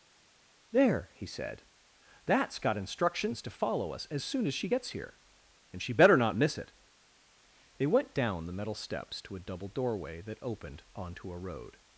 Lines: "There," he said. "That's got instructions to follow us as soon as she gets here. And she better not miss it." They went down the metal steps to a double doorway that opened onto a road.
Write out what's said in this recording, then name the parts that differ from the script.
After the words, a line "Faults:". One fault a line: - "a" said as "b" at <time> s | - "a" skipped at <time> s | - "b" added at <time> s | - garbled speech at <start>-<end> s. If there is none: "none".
"There," he said. "That's got instructions to follow us as soon as she gets here. And she better not miss it." They went down the metal steps to a double doorway that opened onto a road.
Faults:
none